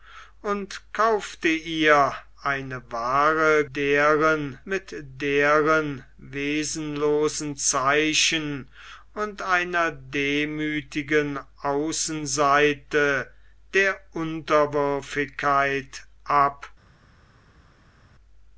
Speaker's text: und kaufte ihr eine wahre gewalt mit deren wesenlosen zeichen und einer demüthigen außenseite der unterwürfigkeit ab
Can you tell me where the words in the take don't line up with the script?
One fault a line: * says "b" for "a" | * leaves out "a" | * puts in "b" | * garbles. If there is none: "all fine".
* says "deren" for "gewalt"